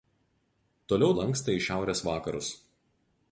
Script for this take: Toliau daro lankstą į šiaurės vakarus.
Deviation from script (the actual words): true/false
true